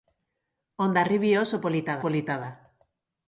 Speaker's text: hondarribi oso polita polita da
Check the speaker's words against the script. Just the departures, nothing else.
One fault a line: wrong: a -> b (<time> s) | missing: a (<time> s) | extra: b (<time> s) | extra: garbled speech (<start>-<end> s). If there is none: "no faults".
no faults